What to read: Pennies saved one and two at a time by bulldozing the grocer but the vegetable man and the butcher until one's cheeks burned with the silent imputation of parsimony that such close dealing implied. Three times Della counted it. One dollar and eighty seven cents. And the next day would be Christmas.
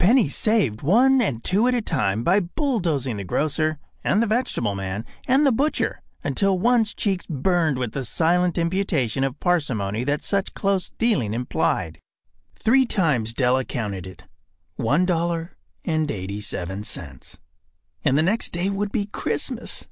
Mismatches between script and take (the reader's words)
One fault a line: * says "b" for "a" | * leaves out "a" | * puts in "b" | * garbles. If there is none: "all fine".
* says "and" for "but"